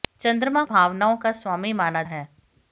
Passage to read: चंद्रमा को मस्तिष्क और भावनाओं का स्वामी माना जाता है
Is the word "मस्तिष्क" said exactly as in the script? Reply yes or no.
no